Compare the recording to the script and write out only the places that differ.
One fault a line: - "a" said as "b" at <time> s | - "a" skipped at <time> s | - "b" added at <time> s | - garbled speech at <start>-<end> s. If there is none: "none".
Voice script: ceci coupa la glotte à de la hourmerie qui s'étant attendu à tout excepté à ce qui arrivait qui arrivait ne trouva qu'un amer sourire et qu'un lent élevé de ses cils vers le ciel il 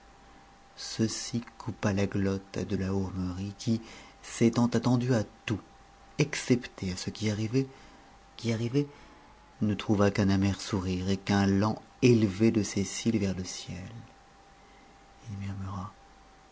none